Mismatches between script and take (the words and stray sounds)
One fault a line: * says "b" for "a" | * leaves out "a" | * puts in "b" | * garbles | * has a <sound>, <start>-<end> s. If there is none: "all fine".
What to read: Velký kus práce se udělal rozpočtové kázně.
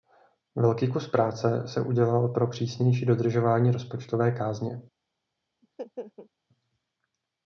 * puts in "pro přísnější dodržování"
* has a laugh, 5.6-6.3 s